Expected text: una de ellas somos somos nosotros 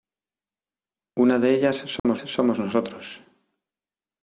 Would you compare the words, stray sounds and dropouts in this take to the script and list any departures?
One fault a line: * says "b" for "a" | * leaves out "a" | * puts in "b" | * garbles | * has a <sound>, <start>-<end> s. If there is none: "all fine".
* has a dropout, 2.0-2.0 s